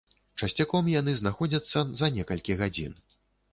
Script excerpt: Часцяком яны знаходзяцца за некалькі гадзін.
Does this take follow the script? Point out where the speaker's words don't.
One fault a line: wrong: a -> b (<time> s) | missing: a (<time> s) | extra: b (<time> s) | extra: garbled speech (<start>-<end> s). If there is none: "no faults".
no faults